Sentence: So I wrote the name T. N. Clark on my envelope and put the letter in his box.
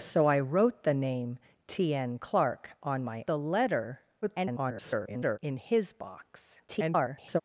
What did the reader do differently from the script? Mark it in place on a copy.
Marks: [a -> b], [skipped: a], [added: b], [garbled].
So I wrote the name T. N. Clark on my [skipped: envelope and put] the letter [garbled] in his box. [garbled]